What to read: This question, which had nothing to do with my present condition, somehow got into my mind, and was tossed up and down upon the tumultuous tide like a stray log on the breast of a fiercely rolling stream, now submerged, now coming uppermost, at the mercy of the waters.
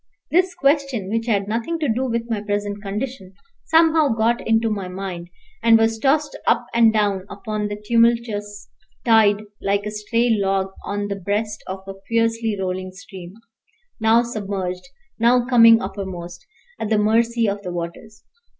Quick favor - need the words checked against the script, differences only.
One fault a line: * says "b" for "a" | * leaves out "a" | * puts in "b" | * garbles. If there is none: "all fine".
all fine